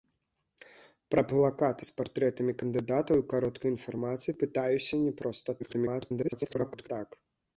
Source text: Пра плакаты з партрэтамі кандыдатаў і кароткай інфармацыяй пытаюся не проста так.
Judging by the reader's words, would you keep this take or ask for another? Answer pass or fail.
fail